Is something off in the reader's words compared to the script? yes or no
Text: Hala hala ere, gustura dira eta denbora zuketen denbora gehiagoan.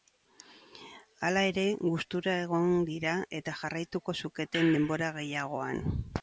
yes